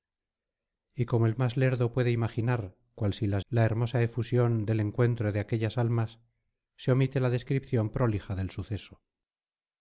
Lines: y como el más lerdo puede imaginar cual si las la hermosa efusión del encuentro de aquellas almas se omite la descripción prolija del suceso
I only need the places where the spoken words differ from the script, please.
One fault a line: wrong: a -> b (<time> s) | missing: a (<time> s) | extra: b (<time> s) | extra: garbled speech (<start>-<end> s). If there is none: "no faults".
no faults